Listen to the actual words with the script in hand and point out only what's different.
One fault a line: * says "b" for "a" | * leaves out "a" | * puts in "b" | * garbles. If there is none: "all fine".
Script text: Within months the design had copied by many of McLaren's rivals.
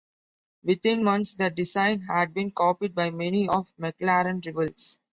* puts in "been"